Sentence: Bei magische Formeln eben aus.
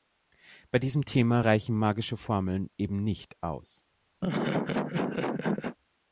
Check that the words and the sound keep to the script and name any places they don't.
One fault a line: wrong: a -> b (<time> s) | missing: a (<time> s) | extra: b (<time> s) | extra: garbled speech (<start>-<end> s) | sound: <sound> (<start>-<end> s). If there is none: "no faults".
extra: diesem Thema reichen (0.8 s)
extra: nicht (3.0 s)
sound: laugh (4.2-5.8 s)